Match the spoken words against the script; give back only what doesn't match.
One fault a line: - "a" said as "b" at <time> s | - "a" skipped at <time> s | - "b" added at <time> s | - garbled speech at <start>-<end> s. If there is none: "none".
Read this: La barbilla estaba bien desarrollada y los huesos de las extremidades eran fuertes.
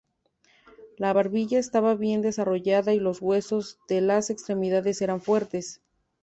none